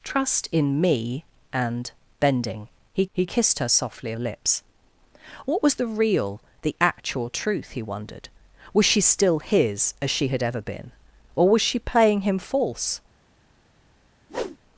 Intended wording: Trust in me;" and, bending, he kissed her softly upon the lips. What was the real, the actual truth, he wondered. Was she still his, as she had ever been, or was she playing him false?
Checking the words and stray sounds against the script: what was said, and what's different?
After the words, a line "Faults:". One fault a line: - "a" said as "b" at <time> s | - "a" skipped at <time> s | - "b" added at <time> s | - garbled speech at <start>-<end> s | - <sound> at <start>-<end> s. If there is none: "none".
Trust in me;" and, bending, he he kissed her softly the lips. What was the real, the actual truth, he wondered. Was she still his, as she had ever been, or was she playing him false?
Faults:
- "he" added at 3.1 s
- "upon" skipped at 4.1 s
- whoosh at 14.3-14.6 s